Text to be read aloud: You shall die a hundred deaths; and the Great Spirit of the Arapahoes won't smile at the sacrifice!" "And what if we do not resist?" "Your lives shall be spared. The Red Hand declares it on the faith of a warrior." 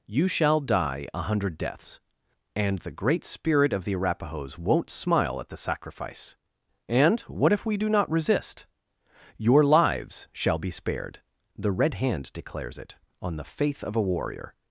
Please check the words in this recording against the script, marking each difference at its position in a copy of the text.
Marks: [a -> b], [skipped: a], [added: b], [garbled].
You shall die a hundred deaths; and the Great Spirit of the Arapahoes won't smile at the sacrifice!" "And what if we do not resist?" "Your lives shall be spared. The Red Hand declares it on the faith of a warrior."